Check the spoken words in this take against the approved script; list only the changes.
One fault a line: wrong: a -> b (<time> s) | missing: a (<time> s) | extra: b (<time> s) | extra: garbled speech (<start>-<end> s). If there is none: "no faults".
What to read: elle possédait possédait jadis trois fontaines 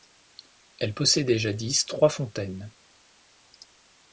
missing: possédait (1.4 s)